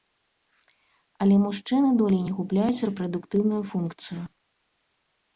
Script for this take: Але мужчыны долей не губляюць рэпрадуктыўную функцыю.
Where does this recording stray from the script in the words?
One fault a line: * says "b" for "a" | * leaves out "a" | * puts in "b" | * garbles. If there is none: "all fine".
all fine